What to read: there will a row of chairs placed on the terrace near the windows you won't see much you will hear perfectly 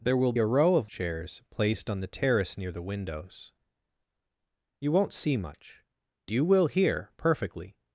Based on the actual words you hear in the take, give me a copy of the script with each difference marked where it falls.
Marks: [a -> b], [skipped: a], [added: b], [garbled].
there will a row of chairs placed on the terrace near the windows you won't see much you will hear perfectly